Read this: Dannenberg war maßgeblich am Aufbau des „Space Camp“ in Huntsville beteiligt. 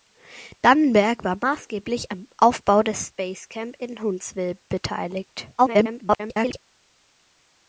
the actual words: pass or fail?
fail